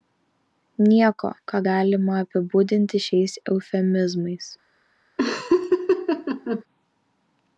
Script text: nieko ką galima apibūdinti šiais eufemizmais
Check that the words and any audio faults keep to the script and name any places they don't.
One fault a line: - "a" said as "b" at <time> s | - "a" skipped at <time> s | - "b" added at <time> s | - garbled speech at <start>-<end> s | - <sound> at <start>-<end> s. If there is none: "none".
- laugh at 5.2-6.6 s